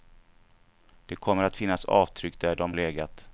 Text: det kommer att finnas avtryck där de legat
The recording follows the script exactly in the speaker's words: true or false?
true